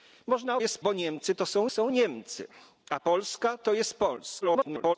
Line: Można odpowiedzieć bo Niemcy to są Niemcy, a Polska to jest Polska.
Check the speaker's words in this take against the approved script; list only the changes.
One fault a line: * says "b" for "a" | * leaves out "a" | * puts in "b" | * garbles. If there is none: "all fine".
* says "jest" for "odpowiedzieć"
* puts in "są"
* garbles